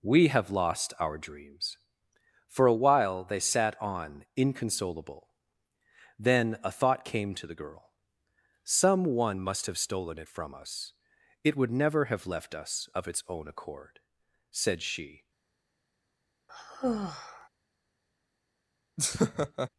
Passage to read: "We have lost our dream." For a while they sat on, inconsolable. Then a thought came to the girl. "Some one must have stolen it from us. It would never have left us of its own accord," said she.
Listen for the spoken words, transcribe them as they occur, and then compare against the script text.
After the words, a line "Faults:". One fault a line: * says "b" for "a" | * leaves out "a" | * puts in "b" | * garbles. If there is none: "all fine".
"We have lost our dreams." For a while they sat on, inconsolable. Then a thought came to the girl. "Some one must have stolen it from us. It would never have left us of its own accord," said she.
Faults:
* says "dreams" for "dream"